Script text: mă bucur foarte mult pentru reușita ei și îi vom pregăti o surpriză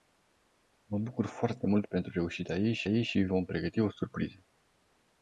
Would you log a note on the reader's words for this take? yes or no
yes